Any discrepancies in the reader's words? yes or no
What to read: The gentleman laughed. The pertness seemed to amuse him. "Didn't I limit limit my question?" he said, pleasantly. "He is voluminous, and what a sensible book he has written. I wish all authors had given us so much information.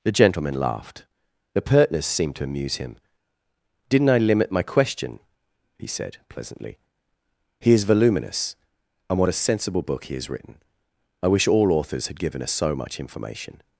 yes